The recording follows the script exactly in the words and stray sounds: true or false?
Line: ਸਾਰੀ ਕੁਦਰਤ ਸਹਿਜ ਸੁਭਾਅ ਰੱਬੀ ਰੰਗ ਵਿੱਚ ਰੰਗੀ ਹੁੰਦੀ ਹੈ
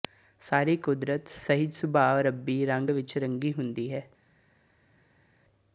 true